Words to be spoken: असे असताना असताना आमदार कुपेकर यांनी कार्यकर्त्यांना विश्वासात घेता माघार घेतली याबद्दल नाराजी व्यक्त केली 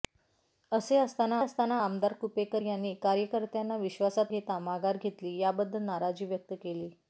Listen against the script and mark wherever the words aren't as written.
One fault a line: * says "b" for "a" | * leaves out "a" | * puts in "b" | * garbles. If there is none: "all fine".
all fine